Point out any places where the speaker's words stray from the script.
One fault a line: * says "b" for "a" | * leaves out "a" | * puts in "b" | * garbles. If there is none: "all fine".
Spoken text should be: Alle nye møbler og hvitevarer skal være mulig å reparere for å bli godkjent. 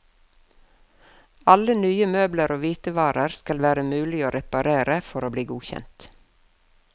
all fine